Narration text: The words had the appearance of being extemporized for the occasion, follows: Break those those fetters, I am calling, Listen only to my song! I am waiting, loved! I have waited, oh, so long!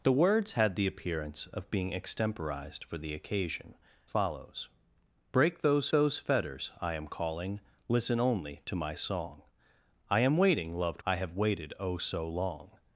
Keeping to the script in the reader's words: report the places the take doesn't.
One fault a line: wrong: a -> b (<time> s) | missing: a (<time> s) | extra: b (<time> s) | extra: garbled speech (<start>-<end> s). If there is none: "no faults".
no faults